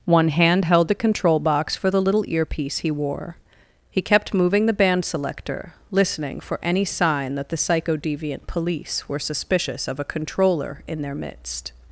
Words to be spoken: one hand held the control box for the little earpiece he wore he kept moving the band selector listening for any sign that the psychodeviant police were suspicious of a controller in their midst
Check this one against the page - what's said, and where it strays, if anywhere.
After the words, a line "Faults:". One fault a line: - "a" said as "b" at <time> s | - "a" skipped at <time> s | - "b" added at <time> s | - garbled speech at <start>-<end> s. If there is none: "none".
one hand held the control box for the little earpiece he wore he kept moving the band selector listening for any sign that the psychodeviant police were suspicious of a controller in their midst
Faults:
none